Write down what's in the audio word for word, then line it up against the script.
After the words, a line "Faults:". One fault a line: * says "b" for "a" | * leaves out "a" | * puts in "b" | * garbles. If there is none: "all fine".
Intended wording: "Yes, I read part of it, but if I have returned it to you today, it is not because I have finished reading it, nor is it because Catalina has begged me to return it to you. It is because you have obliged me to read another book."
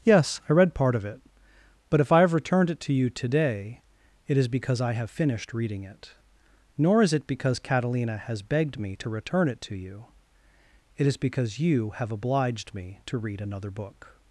"Yes, I read part of it, but if I have returned it to you today, it is because I have finished reading it, nor is it because Catalina has begged me to return it to you. It is because you have obliged me to read another book."
Faults:
* leaves out "not"